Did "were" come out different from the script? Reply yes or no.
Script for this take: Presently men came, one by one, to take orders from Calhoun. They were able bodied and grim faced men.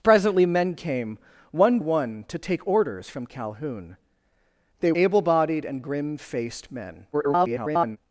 yes